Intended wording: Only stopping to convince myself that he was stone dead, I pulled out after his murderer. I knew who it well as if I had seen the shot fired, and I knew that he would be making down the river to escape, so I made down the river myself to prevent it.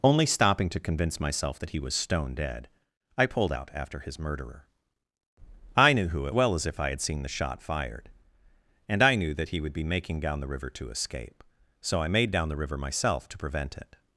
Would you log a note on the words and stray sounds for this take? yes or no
no